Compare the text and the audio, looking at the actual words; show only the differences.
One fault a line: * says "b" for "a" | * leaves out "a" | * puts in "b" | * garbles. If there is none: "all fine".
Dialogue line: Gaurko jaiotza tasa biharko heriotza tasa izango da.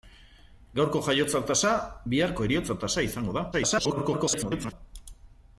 * garbles